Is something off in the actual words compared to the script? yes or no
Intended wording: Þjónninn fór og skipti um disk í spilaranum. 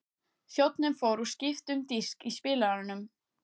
no